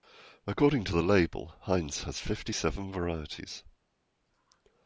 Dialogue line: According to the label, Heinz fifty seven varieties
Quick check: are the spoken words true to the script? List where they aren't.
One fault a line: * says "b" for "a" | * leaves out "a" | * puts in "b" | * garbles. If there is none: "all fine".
* puts in "has"